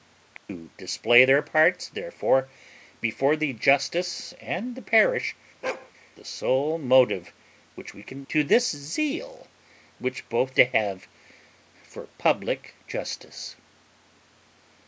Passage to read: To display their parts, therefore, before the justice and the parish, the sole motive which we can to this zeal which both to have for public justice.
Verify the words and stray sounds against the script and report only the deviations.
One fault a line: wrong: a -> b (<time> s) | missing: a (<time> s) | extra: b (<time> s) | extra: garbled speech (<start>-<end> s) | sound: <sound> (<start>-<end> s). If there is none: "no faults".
sound: dropout (0.4-0.5 s)
sound: bark (5.6-5.9 s)